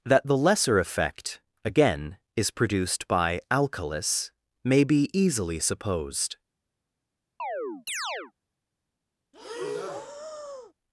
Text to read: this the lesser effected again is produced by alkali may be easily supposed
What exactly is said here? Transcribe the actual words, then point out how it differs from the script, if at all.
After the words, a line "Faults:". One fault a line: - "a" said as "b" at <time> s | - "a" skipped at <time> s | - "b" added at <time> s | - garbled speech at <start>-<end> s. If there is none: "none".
that the lesser effect again is produced by alkalis may be easily supposed
Faults:
- "this" said as "that" at 0.0 s
- "effected" said as "effect" at 0.8 s
- "alkali" said as "alkalis" at 3.5 s